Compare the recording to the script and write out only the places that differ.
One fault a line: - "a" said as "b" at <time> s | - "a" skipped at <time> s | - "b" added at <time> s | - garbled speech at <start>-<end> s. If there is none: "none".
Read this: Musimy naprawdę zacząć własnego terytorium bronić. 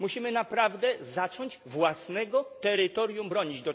none